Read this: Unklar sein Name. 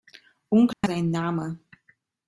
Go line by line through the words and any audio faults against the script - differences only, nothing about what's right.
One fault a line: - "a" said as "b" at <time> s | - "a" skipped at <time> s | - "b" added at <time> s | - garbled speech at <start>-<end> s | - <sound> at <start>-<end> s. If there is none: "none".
- dropout at 0.7-0.8 s